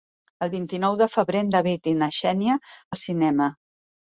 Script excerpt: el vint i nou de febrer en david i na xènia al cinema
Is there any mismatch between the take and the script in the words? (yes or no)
no